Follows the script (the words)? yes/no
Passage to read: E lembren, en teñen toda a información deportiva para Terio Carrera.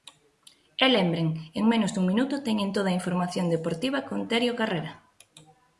no